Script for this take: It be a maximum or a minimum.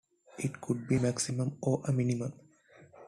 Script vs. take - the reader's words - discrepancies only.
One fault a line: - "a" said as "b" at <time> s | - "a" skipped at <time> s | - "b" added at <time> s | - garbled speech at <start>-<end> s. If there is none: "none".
- "could" added at 0.6 s